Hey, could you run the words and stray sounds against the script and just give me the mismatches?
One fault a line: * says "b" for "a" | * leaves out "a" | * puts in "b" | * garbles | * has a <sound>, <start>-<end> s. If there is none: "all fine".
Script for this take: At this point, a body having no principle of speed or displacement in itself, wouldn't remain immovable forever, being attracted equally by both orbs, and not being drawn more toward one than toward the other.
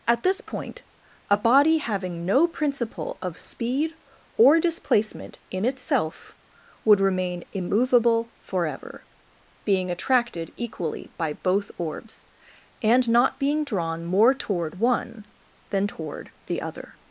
* says "would" for "wouldn't"